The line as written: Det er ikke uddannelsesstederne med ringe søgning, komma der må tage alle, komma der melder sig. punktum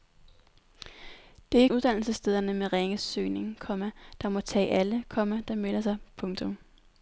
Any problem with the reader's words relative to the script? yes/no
no